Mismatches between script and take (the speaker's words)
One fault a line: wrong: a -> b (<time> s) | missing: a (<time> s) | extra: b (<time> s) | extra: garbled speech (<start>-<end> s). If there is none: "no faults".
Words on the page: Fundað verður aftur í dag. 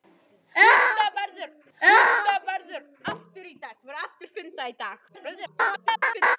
extra: fundað verður (1.8 s)
extra: garbled speech (5.1-6.4 s)